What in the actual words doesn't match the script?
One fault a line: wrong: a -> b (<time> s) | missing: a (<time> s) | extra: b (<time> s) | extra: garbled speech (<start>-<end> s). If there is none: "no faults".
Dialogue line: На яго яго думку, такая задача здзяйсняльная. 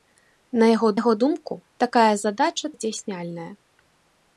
no faults